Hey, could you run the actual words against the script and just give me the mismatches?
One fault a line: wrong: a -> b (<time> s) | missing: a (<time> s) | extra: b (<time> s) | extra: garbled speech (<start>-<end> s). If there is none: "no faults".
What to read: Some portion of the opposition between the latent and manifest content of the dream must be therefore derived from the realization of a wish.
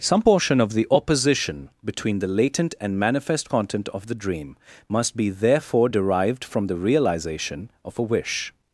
no faults